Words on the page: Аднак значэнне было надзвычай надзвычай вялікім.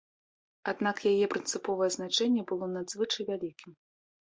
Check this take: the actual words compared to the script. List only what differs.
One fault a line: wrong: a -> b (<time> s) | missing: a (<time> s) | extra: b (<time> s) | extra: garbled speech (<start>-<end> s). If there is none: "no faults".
extra: яе прынцыповае (1.1 s)
missing: надзвычай (3.2 s)